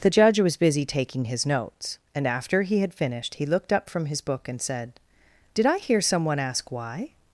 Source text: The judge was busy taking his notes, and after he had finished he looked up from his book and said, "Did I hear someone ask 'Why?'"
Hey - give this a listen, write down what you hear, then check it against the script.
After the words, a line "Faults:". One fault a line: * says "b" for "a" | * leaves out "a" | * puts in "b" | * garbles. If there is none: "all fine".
The judge was busy taking his notes, and after he had finished he looked up from his book and said, "Did I hear someone ask 'Why?'"
Faults:
all fine